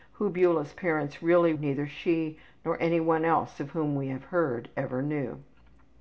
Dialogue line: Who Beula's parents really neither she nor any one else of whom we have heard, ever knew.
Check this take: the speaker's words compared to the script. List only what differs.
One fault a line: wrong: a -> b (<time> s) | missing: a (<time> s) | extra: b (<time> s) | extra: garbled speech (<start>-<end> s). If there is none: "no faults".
no faults